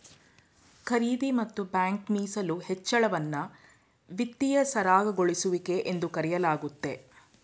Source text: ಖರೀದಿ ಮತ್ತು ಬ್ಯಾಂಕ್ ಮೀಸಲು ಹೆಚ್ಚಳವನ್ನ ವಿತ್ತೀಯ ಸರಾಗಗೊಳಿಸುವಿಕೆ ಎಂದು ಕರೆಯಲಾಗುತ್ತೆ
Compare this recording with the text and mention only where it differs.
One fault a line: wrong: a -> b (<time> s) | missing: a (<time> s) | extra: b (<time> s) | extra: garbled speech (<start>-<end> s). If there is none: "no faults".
no faults